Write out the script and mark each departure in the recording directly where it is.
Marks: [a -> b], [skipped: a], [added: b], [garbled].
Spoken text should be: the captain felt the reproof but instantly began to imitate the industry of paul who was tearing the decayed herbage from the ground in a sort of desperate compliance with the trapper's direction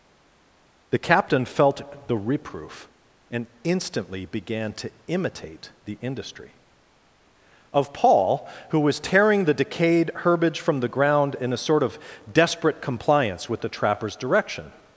the captain felt the reproof [but -> and] instantly began to imitate the industry of paul who was tearing the decayed herbage from the ground in a sort of desperate compliance with the trapper's direction